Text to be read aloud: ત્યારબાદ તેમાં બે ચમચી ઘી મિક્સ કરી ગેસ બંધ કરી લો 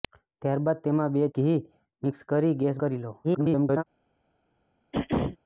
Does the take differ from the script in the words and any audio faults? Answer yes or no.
yes